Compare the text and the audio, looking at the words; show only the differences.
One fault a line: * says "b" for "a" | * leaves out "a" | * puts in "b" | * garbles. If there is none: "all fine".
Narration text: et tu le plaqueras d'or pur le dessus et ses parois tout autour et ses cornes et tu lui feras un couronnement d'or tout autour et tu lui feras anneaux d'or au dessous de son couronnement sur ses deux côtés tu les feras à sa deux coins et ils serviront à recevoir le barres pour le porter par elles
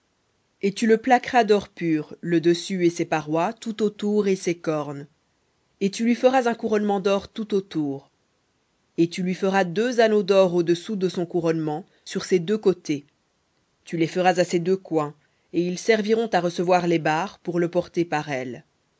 * puts in "deux"
* says "ses" for "sa"
* says "les" for "le"